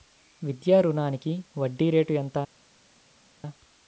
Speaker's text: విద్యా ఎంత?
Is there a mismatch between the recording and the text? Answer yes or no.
yes